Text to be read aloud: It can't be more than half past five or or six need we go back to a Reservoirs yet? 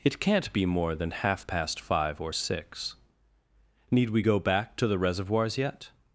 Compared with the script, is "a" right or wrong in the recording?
wrong